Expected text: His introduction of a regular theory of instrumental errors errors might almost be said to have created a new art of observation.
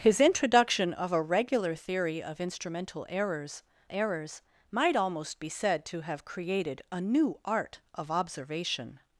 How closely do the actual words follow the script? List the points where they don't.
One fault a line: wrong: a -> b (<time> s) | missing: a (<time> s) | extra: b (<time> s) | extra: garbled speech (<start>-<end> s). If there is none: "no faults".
no faults